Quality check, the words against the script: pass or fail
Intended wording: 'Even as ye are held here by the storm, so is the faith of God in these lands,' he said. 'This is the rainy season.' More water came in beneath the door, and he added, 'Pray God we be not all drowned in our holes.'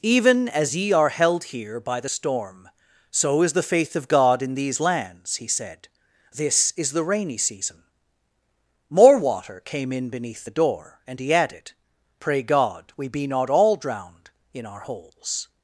pass